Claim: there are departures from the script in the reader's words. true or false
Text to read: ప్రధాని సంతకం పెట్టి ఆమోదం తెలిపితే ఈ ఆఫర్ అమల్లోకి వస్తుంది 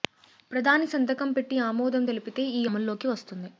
true